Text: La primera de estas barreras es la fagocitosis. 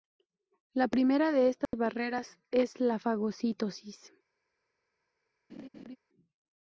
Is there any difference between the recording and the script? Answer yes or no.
no